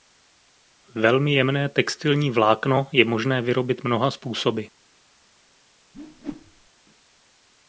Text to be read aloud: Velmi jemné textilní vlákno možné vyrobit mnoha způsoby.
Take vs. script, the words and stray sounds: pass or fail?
fail